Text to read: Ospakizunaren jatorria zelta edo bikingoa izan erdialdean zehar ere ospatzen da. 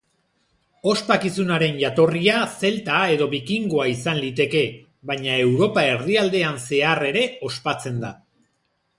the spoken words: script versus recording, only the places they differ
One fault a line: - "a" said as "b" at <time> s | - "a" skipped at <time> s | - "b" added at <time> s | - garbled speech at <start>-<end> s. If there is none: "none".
- "liteke baina Europa" added at 4.2 s